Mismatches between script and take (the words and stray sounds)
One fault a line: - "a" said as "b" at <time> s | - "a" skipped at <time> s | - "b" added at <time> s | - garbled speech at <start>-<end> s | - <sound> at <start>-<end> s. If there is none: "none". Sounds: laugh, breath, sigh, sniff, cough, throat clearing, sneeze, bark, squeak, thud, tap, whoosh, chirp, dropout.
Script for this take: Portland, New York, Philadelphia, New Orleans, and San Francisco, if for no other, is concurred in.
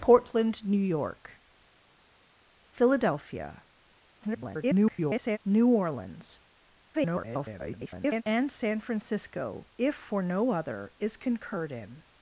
- garbled speech at 4.2-5.4 s
- garbled speech at 6.9-8.2 s